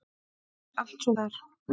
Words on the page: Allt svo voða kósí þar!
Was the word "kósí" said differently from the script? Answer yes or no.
yes